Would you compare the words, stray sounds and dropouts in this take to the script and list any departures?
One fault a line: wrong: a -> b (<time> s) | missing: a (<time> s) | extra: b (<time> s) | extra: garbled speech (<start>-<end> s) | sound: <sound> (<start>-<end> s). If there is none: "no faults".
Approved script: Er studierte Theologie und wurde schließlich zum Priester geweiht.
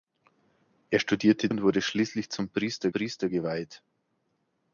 missing: Theologie (1.5 s)
extra: Priester (2.9 s)